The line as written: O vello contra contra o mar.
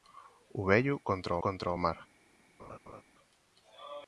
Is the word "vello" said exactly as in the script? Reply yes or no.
yes